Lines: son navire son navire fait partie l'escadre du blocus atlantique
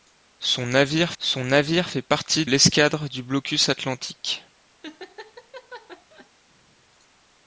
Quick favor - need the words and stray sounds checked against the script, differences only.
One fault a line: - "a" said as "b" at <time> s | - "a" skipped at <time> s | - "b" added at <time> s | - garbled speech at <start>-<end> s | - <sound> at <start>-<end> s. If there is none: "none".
- laugh at 4.8-6.3 s